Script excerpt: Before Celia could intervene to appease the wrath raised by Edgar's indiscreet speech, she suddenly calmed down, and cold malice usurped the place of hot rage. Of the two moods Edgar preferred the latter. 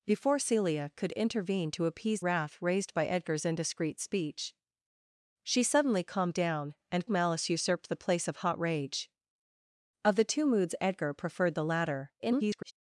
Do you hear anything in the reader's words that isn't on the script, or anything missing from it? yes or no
yes